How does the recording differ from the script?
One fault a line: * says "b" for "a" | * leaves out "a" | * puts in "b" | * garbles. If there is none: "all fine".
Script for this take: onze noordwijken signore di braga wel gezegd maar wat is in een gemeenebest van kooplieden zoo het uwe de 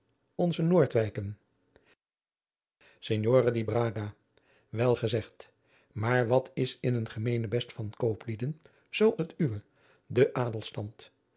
all fine